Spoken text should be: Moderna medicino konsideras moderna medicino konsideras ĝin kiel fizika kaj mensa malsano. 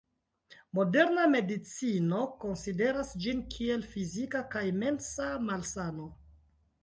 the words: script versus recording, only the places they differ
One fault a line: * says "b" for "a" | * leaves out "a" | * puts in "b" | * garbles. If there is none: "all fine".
* leaves out "moderna medicino konsideras"